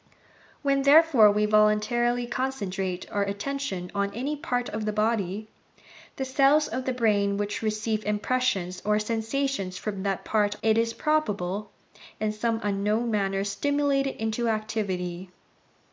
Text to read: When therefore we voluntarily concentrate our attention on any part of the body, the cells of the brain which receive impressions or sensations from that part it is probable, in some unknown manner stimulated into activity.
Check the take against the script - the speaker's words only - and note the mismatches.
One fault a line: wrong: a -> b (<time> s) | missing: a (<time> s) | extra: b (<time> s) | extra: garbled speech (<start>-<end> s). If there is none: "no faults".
no faults